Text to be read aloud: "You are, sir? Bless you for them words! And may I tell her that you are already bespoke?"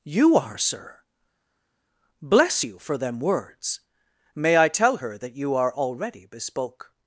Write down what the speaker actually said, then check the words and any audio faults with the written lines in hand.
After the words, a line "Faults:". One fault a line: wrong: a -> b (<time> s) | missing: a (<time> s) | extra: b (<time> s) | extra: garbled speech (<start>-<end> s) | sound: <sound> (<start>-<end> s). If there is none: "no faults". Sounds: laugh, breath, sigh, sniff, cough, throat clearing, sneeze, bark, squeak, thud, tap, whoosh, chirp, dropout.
"You are, sir? Bless you for them words! may I tell her that you are already bespoke?"
Faults:
missing: And (3.8 s)